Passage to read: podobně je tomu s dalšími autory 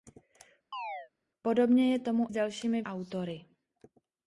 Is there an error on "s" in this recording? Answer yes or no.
no